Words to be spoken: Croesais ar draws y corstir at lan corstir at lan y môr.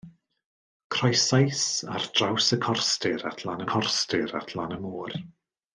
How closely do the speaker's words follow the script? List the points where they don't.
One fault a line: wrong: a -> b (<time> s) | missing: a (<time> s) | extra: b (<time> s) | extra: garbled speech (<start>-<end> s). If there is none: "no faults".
no faults